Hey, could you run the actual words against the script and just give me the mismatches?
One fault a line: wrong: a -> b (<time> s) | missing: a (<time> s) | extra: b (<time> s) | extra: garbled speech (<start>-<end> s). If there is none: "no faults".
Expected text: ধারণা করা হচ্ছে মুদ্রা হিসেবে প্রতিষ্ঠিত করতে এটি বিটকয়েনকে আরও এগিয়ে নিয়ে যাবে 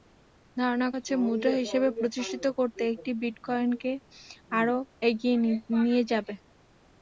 missing: করা (0.9 s)